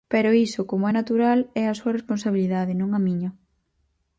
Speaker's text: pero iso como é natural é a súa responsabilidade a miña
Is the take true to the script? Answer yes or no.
no